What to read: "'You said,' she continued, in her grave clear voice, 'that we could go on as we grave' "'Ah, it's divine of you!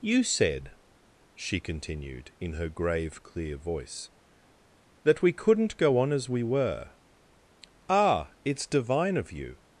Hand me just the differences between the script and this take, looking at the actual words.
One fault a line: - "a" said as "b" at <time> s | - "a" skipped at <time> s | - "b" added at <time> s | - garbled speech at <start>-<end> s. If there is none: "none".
- "could" said as "couldn't" at 5.3 s
- "grave" said as "were" at 6.4 s